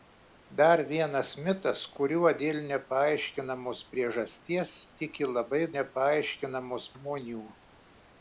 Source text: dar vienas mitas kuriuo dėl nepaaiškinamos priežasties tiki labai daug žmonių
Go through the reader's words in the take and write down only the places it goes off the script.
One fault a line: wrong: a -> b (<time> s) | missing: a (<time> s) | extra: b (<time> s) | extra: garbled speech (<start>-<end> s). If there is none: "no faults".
wrong: daug -> nepaaiškinamos (5.8 s)